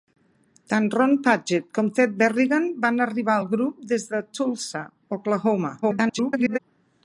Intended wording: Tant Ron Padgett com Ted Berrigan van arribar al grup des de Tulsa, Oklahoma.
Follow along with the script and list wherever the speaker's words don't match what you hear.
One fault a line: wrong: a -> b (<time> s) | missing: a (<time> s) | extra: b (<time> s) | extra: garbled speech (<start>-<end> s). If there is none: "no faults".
extra: garbled speech (5.8-6.6 s)